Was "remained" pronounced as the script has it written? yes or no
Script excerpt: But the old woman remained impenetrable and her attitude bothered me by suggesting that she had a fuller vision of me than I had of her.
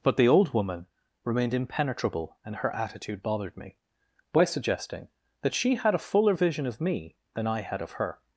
yes